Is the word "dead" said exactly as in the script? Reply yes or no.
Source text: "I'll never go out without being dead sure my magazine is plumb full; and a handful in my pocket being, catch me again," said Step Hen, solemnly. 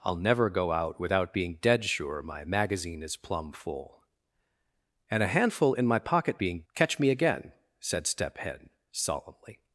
yes